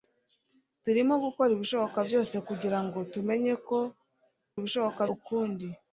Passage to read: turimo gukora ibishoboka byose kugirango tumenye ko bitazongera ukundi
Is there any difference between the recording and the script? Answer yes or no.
yes